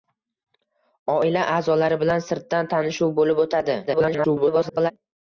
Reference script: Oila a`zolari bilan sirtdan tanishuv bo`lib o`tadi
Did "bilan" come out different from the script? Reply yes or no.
no